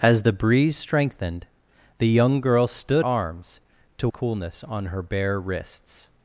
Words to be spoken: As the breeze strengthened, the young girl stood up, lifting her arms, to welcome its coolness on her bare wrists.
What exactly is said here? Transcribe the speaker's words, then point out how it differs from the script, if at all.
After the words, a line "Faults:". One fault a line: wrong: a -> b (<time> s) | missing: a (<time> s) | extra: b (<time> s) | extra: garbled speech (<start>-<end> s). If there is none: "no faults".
As the breeze strengthened, the young girl stood arms, to coolness on her bare wrists.
Faults:
missing: up lifting her (3.1 s)
missing: welcome its (4.1 s)